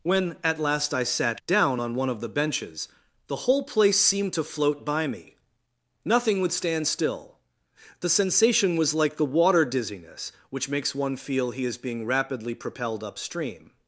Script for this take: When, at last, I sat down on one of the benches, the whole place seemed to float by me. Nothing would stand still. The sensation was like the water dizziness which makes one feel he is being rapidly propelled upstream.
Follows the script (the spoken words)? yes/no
yes